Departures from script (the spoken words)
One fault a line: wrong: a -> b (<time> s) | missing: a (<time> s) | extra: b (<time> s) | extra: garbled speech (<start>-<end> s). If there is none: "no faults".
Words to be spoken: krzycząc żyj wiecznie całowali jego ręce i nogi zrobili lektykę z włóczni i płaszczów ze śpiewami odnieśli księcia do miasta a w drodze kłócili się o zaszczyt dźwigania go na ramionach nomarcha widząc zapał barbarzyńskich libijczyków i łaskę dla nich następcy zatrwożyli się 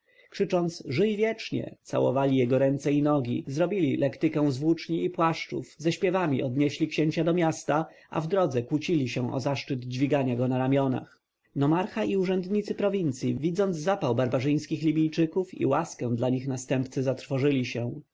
extra: i urzędnicy prowincji (12.0 s)